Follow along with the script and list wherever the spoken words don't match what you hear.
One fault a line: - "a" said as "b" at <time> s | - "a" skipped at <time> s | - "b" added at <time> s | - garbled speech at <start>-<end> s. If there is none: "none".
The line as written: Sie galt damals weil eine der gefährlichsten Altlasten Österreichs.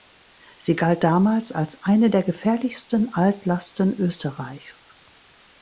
- "weil" said as "als" at 1.5 s